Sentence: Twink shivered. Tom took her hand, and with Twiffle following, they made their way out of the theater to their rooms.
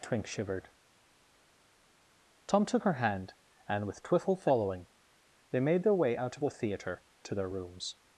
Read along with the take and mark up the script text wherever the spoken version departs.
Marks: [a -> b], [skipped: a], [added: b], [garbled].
Twink shivered. Tom took her hand, and with Twiffle following, they made their way out of the theater to their rooms.